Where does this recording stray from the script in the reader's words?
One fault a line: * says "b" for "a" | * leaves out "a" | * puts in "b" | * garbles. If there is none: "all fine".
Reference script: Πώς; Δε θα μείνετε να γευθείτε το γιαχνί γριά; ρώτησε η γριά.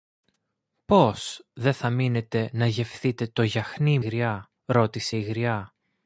all fine